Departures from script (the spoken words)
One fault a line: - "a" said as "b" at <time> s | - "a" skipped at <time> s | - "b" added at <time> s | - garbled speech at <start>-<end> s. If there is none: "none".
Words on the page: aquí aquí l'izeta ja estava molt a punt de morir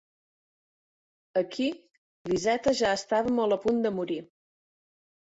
- "aquí" skipped at 1.7 s